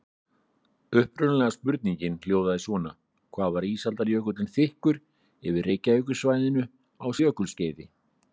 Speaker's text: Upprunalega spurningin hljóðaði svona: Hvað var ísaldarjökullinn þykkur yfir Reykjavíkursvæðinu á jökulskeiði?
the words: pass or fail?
pass